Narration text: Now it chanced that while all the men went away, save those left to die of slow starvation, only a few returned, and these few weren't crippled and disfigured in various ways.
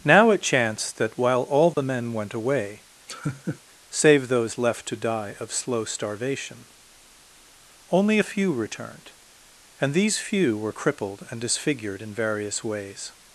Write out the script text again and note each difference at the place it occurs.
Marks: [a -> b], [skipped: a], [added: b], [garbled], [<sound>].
Now it chanced that while all the [dropout] men went away, [laugh] save those left to die of slow starvation, only a few returned, and these few [weren't -> were] crippled and disfigured in various ways.